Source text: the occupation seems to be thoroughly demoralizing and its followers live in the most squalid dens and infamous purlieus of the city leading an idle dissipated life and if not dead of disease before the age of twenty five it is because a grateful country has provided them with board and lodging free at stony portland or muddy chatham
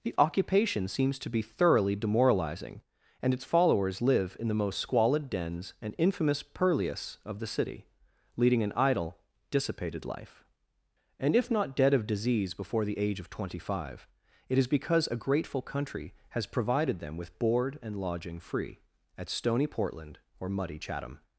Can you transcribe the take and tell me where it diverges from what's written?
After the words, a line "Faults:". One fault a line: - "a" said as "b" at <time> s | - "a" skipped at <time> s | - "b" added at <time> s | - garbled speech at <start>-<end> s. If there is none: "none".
the occupation seems to be thoroughly demoralizing and its followers live in the most squalid dens and infamous purlieus of the city leading an idle dissipated life and if not dead of disease before the age of twenty five it is because a grateful country has provided them with board and lodging free at stony portland or muddy chatham
Faults:
none